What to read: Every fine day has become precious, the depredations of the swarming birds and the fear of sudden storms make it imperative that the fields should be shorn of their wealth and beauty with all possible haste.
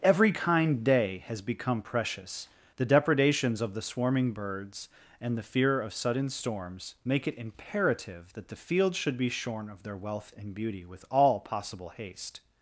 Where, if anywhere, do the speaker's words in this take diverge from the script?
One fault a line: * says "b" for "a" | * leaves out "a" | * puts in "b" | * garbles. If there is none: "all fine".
* says "kind" for "fine"